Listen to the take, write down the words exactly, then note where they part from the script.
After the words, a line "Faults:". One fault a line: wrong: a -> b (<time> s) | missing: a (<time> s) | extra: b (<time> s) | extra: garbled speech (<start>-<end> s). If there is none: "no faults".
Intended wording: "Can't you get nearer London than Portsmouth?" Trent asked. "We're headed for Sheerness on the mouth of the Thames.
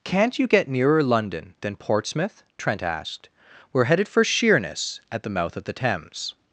"Can't you get nearer London than Portsmouth?" Trent asked. "We're headed for Sheerness at the mouth of the Thames.
Faults:
wrong: on -> at (5.1 s)